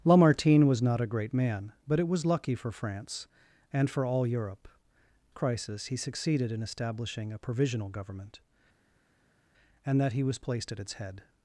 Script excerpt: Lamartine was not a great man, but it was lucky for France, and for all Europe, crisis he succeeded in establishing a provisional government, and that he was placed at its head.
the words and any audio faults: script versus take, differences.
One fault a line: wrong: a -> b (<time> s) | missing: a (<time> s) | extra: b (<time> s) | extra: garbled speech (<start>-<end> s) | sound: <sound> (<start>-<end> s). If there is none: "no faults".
no faults